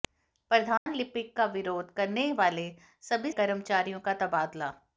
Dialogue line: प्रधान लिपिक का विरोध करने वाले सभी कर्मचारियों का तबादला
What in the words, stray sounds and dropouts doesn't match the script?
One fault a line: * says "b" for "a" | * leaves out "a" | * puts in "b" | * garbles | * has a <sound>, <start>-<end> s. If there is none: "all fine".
* has a dropout, 0.8-0.9 s